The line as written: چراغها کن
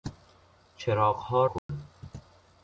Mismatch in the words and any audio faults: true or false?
true